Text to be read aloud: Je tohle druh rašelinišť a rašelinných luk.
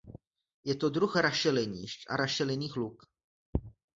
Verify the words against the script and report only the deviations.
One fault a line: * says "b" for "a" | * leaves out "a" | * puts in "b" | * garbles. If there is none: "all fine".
* says "to" for "tohle"